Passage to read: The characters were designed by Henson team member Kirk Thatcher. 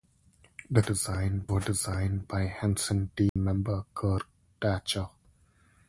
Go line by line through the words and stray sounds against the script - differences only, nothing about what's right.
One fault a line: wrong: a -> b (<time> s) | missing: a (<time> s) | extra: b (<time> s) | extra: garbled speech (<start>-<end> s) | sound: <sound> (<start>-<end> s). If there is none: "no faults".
wrong: characters -> designed (0.8 s)
sound: dropout (3.3-3.4 s)